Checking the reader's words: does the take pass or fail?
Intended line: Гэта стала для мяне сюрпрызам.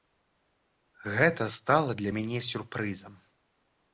pass